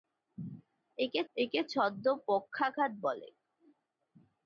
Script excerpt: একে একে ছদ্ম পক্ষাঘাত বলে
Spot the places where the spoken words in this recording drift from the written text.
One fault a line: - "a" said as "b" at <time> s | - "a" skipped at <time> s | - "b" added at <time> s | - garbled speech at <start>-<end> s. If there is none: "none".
none